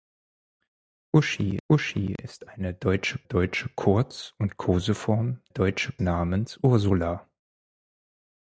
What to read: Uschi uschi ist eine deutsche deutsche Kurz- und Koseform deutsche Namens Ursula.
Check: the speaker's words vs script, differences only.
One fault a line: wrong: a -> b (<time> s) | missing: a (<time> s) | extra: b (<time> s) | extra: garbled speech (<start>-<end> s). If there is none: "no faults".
no faults